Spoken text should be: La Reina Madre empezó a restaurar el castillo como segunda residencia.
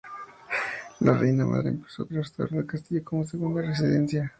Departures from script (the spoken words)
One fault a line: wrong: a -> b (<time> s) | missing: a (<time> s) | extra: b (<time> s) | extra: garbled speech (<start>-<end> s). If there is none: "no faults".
missing: a (2.1 s)